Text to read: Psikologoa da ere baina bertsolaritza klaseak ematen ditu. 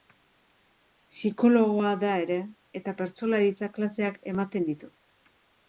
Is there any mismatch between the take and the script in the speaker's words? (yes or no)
yes